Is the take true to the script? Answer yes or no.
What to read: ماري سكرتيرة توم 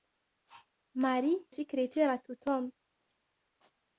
yes